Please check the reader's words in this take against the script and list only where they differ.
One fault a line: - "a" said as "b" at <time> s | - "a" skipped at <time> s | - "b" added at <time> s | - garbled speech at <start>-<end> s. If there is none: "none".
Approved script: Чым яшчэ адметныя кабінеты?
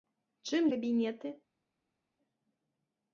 - "яшчэ адметныя" skipped at 0.6 s